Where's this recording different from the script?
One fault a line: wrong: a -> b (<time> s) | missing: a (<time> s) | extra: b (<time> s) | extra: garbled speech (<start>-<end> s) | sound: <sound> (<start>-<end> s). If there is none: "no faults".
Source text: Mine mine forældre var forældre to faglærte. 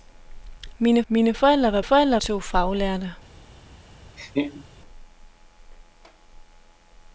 sound: laugh (4.2-4.7 s)